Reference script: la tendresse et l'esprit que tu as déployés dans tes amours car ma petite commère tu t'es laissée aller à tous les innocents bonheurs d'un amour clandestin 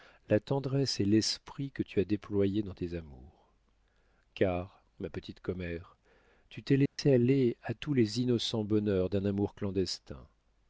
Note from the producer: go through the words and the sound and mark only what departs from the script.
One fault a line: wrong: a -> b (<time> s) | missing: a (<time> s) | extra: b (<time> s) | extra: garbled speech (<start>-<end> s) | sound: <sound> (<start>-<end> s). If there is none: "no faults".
sound: dropout (6.9-7.0 s)